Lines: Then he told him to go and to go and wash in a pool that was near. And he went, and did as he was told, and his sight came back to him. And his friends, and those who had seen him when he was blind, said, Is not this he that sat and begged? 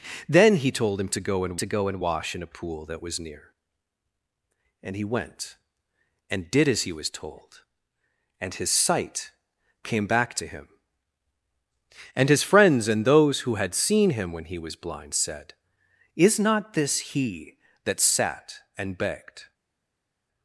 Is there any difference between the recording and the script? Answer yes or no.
no